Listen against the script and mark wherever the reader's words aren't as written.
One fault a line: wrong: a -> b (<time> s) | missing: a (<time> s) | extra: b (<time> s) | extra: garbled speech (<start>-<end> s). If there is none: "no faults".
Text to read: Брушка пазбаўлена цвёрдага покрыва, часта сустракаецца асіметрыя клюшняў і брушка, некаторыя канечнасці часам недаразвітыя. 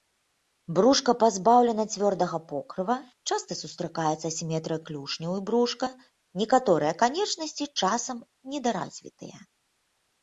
no faults